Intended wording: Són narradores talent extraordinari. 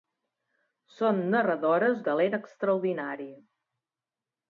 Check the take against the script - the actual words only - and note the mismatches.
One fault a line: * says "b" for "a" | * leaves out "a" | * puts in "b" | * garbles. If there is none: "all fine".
all fine